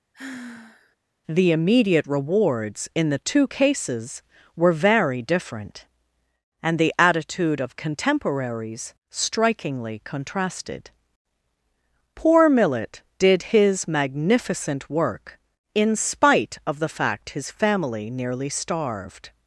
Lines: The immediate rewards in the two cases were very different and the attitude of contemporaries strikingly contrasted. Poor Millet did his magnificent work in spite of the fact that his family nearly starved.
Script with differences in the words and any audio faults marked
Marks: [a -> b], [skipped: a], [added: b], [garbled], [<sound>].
[sigh] The immediate rewards in the two cases were very different and the attitude of contemporaries strikingly contrasted. Poor Millet did his magnificent work in spite of the fact [skipped: that] his family nearly starved.